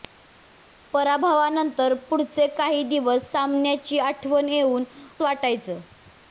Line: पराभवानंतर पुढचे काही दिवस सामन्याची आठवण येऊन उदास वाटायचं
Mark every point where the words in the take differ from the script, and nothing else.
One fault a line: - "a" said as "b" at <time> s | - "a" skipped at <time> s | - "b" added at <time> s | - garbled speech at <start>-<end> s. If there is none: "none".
- "उदास" skipped at 4.8 s